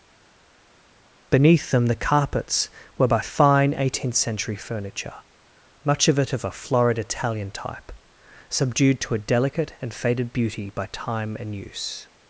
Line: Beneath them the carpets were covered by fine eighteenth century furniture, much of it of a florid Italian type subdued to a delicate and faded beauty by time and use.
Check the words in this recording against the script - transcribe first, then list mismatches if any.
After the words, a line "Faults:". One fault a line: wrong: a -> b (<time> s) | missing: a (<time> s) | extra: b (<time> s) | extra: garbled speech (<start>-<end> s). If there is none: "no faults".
Beneath them the carpets were by fine eighteenth century furniture, much of it of a florid Italian type subdued to a delicate and faded beauty by time and use.
Faults:
missing: covered (3.1 s)